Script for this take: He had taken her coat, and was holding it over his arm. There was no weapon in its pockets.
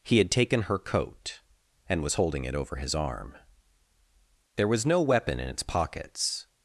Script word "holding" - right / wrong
right